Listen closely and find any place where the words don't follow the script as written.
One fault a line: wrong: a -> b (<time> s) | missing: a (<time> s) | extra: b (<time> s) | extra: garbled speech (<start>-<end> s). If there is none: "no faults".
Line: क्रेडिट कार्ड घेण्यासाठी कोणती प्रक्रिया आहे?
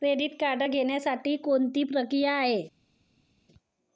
no faults